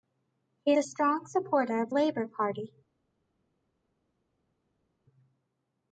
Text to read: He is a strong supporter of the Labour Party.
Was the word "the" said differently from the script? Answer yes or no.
yes